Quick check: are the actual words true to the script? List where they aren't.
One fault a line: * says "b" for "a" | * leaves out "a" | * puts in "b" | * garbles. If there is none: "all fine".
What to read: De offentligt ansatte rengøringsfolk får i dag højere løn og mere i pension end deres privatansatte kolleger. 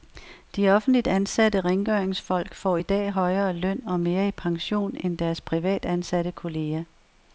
all fine